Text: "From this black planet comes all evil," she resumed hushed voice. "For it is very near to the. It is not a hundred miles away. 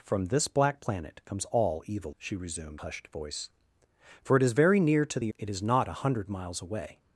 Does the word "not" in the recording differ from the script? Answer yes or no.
no